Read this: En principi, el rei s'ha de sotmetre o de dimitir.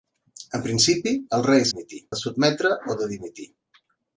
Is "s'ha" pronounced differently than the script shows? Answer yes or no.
yes